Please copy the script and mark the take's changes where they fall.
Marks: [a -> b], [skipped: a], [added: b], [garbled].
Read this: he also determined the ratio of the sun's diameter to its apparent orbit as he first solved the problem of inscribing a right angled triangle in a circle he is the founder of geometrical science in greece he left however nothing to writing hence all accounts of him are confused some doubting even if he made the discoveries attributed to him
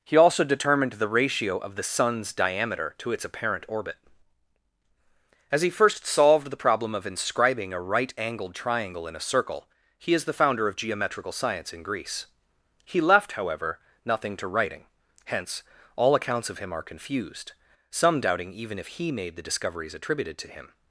he also determined the ratio of the sun's diameter to its apparent orbit as he first solved the problem of inscribing a right angled triangle in a circle he is the founder of geometrical science in greece he left however nothing to writing hence all accounts of him are confused some doubting even if he made the discoveries attributed to him